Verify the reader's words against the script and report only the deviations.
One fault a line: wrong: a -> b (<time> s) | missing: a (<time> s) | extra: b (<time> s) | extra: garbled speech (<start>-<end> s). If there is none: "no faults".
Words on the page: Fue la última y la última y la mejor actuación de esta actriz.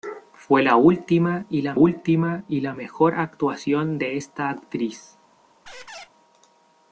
no faults